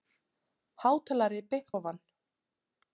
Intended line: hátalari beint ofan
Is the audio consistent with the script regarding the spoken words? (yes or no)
yes